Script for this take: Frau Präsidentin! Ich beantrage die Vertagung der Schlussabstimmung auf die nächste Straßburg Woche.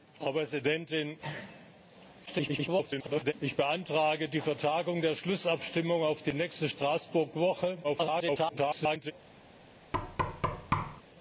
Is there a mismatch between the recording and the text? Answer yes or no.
yes